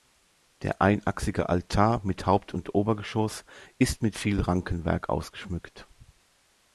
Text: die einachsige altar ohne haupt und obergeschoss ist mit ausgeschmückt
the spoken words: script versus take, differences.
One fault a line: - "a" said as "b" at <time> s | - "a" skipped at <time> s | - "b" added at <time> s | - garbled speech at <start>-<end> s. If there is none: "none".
- "die" said as "der" at 0.6 s
- "ohne" said as "mit" at 2.0 s
- "viel rankenwerk" added at 4.1 s